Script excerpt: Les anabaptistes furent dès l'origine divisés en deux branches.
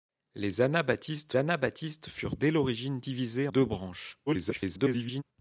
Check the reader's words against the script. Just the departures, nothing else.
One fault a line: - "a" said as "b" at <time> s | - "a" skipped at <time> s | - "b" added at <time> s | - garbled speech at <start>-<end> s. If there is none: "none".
- "anabaptistes" added at 1.4 s
- "en" skipped at 3.5 s
- garbled speech at 4.3-5.2 s